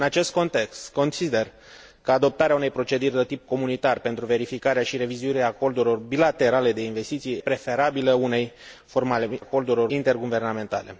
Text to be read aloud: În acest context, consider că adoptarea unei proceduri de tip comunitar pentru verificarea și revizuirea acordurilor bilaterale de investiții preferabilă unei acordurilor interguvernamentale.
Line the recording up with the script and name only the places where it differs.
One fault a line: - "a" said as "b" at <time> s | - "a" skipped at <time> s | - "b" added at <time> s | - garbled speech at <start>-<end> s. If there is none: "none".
none